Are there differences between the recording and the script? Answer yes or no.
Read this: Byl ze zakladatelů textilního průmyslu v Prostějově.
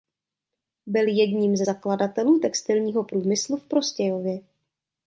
yes